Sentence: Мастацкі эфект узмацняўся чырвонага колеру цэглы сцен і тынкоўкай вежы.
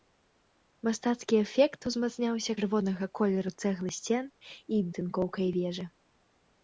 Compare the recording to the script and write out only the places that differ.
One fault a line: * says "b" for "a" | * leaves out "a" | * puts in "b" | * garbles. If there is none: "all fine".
all fine